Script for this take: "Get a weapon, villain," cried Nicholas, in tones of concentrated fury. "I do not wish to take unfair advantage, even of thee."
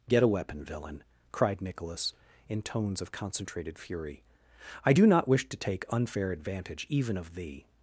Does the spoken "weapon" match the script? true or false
true